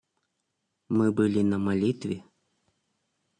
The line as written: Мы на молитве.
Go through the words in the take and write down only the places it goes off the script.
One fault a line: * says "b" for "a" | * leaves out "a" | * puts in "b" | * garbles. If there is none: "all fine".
* puts in "были"